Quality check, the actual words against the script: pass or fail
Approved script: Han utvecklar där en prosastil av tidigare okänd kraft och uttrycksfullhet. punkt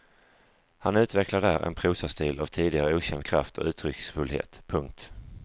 pass